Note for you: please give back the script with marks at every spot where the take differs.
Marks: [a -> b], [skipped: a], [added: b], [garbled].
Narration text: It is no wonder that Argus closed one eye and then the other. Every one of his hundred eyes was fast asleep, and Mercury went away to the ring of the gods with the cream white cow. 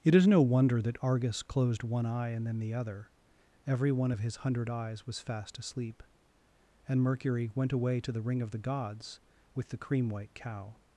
It is no wonder that Argus closed one eye and then the other. Every one of his hundred eyes was fast asleep, and Mercury went away to the ring of the gods with the cream white cow.